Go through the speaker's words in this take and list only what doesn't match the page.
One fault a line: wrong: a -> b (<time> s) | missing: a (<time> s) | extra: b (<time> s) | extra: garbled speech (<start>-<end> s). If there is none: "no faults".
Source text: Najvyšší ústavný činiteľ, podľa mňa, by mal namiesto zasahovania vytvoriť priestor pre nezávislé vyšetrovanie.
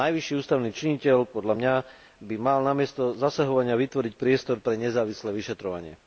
no faults